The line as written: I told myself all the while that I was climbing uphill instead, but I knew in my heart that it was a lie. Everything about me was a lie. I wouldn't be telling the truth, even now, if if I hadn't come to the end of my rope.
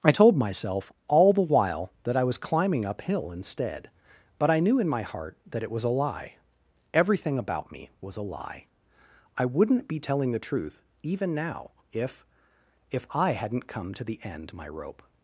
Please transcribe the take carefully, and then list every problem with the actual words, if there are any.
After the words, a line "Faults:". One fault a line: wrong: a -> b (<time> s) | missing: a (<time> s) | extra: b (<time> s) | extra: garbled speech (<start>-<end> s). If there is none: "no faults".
I told myself all the while that I was climbing uphill instead, but I knew in my heart that it was a lie. Everything about me was a lie. I wouldn't be telling the truth, even now, if if I hadn't come to the end my rope.
Faults:
missing: of (14.5 s)